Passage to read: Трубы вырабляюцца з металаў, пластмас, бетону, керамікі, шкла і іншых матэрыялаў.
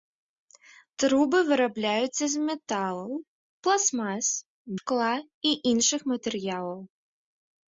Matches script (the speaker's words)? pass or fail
fail